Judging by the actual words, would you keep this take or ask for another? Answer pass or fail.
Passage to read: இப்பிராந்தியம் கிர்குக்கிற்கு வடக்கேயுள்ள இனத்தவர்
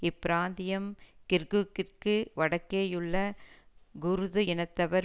fail